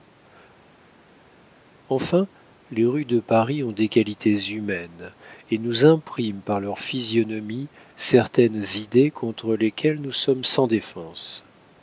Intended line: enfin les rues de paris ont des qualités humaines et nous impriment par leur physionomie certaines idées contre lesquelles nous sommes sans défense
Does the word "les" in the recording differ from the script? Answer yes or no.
no